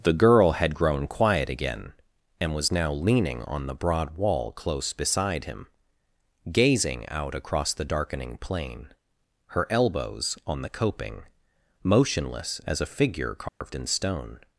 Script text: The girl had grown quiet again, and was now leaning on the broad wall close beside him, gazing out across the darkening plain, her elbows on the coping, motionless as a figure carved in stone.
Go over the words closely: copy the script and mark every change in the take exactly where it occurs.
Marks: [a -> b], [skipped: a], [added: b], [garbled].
The girl had grown quiet again, and was now leaning on the broad wall close beside him, gazing out across the darkening plain, her elbows on the coping, motionless as a figure carved in stone.